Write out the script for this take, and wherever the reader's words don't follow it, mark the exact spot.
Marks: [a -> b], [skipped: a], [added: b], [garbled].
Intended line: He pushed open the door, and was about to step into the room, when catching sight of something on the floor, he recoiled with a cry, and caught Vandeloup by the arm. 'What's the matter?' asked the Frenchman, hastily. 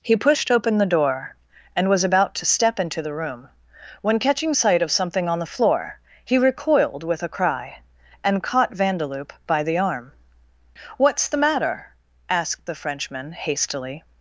He pushed open the door, and was about to step into the room, when catching sight of something on the floor, he recoiled with a cry, and caught Vandeloup by the arm. 'What's the matter?' asked the Frenchman, hastily.